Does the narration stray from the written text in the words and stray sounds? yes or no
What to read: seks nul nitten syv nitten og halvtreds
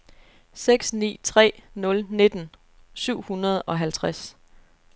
yes